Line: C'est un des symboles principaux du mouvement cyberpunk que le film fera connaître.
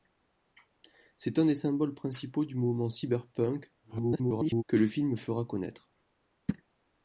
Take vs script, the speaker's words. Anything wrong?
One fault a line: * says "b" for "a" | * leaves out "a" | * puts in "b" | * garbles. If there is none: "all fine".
* garbles